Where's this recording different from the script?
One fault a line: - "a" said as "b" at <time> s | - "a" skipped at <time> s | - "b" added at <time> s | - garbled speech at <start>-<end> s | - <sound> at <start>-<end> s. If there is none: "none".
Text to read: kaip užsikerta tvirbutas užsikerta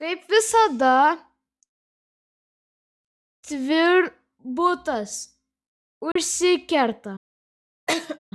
- "užsikerta" said as "visada" at 0.3 s
- dropout at 6.1-6.2 s
- laugh at 7.9-8.2 s